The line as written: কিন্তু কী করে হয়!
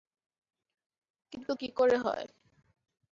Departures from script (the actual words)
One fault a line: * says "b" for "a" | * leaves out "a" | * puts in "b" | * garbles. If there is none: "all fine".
all fine